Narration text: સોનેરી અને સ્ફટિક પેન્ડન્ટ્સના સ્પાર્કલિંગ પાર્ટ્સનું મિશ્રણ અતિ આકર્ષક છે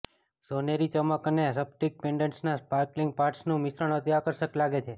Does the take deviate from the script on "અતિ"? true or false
false